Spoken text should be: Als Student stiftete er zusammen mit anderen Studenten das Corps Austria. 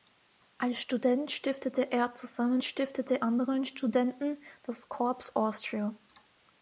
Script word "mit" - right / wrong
wrong